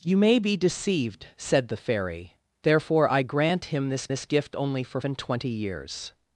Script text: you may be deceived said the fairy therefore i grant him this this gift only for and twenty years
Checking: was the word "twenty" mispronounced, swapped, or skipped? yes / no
no